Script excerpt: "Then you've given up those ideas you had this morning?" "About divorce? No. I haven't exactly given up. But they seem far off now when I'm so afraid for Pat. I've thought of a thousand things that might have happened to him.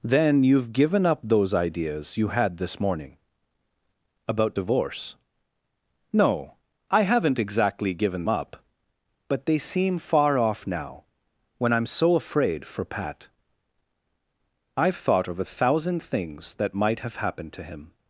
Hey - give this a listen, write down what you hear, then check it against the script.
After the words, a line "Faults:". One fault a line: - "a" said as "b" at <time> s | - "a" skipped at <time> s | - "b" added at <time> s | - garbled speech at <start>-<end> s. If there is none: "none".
"Then you've given up those ideas you had this morning?" "About divorce? No. I haven't exactly given up. But they seem far off now when I'm so afraid for Pat. I've thought of a thousand things that might have happened to him.
Faults:
none